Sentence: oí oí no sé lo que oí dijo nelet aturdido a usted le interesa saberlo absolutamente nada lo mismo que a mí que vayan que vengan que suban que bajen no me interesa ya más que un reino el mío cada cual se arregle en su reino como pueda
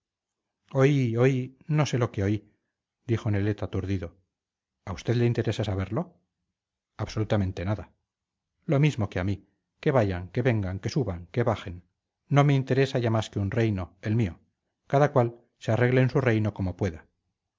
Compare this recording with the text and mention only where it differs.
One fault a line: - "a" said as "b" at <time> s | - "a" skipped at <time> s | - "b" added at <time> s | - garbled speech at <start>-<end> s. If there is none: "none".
none